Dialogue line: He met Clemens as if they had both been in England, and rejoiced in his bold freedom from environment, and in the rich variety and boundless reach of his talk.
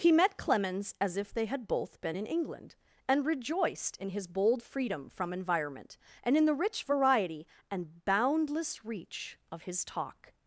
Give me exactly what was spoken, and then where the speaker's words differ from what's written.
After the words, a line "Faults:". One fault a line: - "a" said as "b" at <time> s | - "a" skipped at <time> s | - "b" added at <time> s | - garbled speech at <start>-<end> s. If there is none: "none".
He met Clemens as if they had both been in England, and rejoiced in his bold freedom from environment, and in the rich variety and boundless reach of his talk.
Faults:
none